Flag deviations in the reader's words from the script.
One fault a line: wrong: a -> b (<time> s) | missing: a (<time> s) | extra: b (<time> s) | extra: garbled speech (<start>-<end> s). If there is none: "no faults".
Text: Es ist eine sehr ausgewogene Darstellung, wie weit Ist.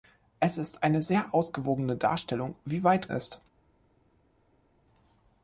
no faults